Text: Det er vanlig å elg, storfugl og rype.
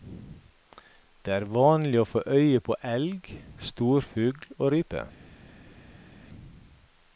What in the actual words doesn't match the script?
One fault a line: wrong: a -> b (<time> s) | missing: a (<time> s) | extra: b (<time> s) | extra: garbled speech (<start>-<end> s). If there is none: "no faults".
extra: få øye på (2.1 s)